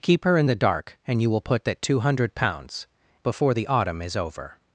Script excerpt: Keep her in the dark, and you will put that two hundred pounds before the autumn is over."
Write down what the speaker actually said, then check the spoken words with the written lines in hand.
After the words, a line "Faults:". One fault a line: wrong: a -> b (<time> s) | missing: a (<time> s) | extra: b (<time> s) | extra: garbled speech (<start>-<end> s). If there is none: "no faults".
Keep her in the dark, and you will put that two hundred pounds before the autumn is over."
Faults:
no faults